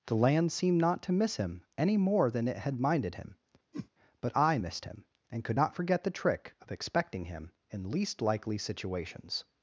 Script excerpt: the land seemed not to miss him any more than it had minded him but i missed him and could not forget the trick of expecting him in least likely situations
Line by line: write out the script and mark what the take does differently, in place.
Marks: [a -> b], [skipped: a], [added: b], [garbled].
the land seemed not to miss him any more than it had minded him but i missed him and could not forget the trick of expecting him in least likely situations